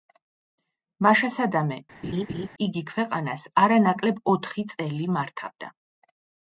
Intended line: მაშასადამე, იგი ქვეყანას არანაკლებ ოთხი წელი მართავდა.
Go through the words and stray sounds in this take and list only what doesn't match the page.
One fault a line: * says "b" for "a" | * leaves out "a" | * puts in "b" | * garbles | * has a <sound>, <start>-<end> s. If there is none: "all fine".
* has a laugh, 2.0-2.5 s